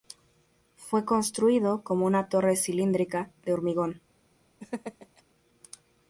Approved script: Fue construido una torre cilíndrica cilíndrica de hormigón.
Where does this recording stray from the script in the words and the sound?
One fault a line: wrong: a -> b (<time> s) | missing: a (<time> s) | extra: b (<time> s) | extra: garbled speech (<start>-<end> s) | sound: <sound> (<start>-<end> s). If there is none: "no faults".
extra: como (1.8 s)
missing: cilíndrica (3.3 s)
sound: laugh (4.6-5.2 s)